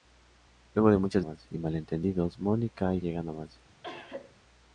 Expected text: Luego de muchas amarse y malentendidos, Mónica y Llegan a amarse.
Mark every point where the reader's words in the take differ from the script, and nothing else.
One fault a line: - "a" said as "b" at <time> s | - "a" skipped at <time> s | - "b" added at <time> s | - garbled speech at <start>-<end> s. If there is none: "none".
none